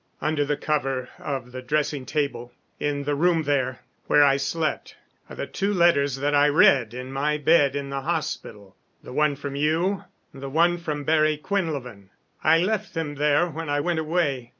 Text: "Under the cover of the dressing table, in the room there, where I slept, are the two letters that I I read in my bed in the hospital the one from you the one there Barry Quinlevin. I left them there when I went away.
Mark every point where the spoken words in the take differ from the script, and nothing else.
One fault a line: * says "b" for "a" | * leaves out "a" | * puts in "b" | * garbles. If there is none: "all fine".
* leaves out "I"
* says "from" for "there"